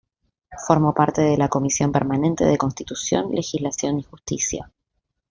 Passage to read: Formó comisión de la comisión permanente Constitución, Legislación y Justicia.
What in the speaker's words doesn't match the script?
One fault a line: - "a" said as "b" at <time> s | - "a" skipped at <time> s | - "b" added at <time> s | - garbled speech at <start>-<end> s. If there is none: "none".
- "comisión" said as "parte" at 0.9 s
- "de" added at 2.5 s